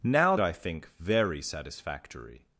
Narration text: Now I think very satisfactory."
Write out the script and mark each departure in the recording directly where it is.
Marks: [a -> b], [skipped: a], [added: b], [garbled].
Now I think very satisfactory."